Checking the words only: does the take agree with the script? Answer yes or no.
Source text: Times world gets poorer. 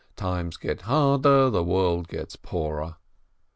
no